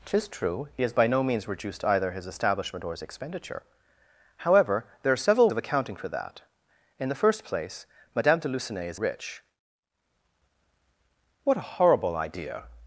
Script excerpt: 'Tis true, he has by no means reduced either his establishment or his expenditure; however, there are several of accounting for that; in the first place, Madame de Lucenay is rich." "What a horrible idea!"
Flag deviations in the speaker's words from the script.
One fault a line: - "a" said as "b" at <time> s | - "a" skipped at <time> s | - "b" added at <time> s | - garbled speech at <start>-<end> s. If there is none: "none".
none